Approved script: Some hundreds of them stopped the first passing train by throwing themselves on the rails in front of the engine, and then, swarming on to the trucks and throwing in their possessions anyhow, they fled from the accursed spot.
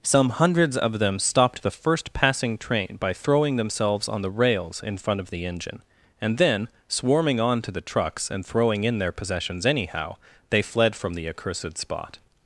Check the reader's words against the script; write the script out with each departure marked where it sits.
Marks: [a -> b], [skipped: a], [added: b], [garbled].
Some hundreds of them stopped the first passing train by throwing themselves on the rails in front of the engine, and then, swarming on to the trucks and throwing in their possessions anyhow, they fled from the accursed spot.